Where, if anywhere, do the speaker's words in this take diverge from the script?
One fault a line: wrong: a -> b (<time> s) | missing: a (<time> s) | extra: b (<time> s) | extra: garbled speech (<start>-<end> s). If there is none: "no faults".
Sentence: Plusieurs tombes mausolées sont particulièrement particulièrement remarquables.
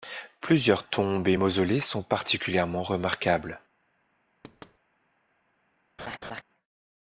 extra: et (1.3 s)
missing: particulièrement (2.8 s)